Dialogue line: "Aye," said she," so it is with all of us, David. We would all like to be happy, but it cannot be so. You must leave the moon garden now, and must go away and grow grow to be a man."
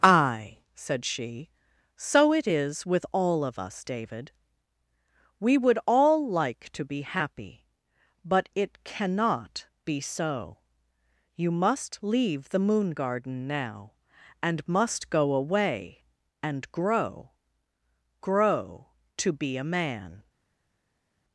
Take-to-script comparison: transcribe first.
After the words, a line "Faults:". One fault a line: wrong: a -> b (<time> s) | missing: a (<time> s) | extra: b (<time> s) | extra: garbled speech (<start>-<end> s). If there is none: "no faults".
"Aye," said she," so it is with all of us, David. We would all like to be happy, but it cannot be so. You must leave the moon garden now, and must go away and grow grow to be a man."
Faults:
no faults